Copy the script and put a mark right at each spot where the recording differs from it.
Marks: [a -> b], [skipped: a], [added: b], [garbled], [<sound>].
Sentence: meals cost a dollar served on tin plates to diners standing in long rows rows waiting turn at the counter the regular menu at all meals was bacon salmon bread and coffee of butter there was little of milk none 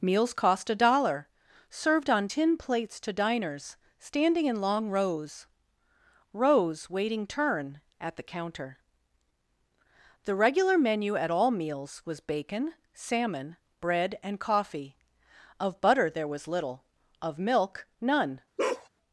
meals cost a dollar served on tin plates to diners standing in long rows rows waiting turn at the counter the regular menu at all meals was bacon salmon bread and coffee of butter there was little of milk none [bark]